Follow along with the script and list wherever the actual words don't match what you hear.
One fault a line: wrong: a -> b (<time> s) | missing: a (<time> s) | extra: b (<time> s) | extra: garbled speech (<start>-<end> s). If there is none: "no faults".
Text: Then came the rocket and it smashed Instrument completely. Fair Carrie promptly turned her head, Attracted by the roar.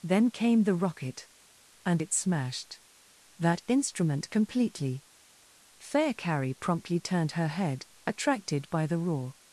extra: That (3.4 s)